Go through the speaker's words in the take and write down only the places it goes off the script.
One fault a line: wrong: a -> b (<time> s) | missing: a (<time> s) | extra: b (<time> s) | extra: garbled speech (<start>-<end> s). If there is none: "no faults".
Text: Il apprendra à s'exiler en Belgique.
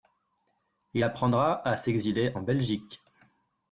no faults